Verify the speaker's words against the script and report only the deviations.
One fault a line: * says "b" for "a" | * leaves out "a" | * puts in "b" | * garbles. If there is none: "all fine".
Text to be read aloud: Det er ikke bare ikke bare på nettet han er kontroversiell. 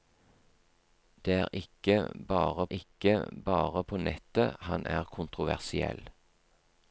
all fine